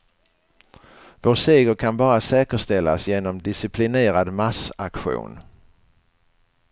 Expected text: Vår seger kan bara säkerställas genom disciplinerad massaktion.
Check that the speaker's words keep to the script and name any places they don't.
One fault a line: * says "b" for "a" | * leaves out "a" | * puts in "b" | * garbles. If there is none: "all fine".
all fine